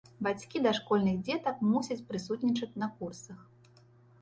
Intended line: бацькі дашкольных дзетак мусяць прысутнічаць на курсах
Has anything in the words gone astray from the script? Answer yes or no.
no